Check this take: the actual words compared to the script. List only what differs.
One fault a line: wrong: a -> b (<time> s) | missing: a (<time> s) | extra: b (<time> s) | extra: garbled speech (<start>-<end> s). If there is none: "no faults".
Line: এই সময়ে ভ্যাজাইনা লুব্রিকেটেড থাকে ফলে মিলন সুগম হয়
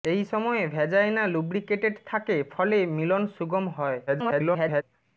extra: garbled speech (4.1-4.8 s)